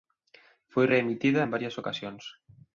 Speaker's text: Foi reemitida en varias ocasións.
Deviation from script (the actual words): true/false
false